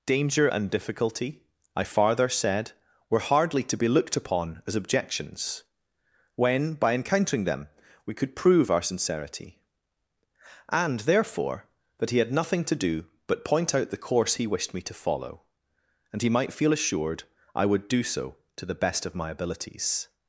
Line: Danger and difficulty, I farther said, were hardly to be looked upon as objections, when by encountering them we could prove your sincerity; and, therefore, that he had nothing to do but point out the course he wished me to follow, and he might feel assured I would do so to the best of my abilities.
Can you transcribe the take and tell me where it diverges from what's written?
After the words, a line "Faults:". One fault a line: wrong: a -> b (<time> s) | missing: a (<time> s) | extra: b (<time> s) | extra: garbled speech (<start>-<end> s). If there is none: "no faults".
Danger and difficulty, I farther said, were hardly to be looked upon as objections, when by encountering them we could prove our sincerity; and, therefore, that he had nothing to do but point out the course he wished me to follow, and he might feel assured I would do so to the best of my abilities.
Faults:
wrong: your -> our (8.7 s)